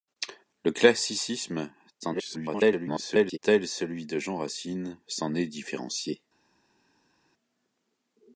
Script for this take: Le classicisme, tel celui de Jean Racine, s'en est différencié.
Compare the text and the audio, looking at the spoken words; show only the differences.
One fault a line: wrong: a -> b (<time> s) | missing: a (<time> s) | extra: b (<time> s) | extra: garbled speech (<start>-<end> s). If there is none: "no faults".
extra: garbled speech (2.0-3.4 s)